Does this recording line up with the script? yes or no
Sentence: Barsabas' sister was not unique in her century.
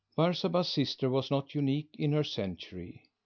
yes